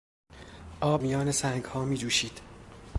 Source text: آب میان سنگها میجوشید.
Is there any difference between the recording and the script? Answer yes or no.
no